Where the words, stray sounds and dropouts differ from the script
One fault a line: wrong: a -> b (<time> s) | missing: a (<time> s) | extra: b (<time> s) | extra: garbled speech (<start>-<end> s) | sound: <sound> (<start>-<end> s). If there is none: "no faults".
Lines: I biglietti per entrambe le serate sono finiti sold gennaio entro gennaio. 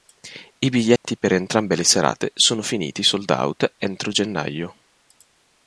sound: dropout (1.0-1.0 s)
wrong: gennaio -> out (3.3 s)